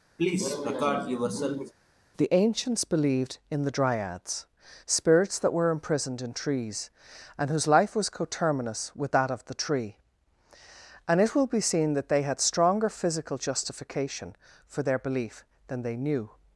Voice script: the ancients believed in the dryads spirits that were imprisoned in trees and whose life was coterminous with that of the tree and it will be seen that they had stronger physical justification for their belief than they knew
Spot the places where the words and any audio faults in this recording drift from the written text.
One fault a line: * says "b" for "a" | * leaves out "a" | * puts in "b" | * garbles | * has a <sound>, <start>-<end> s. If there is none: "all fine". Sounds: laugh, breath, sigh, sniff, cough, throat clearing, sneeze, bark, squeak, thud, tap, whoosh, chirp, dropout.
* has a cough, 0.2-1.7 s